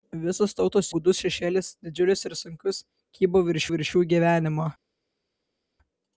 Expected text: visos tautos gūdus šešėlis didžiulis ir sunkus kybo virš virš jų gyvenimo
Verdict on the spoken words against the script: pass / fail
pass